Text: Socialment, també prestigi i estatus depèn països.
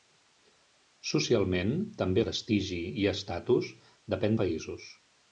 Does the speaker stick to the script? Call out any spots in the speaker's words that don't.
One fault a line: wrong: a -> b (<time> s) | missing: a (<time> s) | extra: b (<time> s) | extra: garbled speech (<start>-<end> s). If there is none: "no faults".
no faults